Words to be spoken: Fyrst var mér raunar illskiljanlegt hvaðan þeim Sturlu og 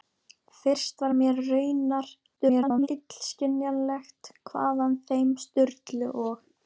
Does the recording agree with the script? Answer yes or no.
no